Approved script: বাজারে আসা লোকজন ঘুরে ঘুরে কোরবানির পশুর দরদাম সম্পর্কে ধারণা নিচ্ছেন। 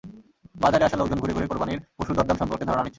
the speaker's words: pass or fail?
pass